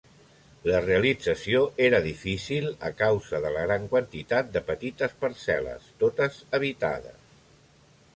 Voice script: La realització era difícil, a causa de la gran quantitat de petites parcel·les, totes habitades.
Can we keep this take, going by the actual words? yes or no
yes